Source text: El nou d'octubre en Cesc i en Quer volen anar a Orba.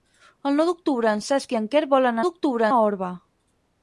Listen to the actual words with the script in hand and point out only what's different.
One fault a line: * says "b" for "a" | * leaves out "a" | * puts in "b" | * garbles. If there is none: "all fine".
* says "d'octubre" for "anar"